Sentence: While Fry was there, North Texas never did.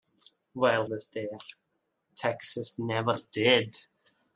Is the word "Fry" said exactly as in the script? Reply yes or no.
no